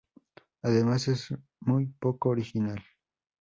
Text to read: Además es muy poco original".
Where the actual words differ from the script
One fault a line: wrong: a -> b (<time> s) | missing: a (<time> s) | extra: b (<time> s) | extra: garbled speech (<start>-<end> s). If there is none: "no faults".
no faults